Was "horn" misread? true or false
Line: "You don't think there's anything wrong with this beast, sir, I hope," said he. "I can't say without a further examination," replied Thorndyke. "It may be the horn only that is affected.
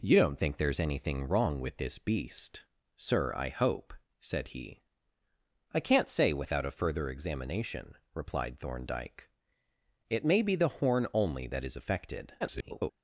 false